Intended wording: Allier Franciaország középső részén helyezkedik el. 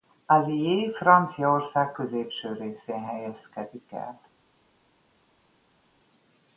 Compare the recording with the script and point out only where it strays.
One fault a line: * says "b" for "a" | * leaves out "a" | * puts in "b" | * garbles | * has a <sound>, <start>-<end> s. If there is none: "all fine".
all fine